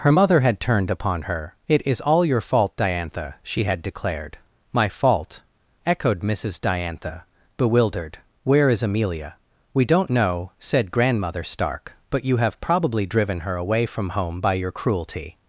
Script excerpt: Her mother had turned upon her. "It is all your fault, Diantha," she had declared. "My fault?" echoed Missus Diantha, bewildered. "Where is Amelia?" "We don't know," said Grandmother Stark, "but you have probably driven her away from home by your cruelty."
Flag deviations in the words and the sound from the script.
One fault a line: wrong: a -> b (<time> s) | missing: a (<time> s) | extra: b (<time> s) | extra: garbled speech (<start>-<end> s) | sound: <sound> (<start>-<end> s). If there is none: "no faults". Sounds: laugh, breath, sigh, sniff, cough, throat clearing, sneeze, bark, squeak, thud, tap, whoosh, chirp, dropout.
no faults